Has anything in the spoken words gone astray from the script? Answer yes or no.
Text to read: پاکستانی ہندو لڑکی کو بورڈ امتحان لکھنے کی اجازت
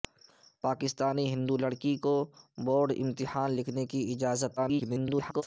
yes